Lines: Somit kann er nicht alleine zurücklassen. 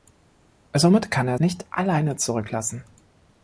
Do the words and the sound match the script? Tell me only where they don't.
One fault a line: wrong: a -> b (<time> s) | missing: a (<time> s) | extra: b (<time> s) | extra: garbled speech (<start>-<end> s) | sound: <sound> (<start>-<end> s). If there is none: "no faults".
no faults